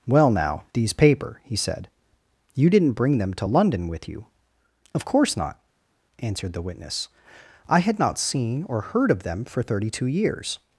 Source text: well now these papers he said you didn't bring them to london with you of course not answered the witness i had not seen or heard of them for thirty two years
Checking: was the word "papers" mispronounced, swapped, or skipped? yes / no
yes